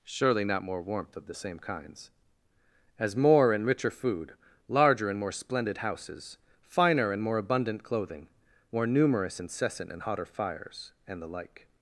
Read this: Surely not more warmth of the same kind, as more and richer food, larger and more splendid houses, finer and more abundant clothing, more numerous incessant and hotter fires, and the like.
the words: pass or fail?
fail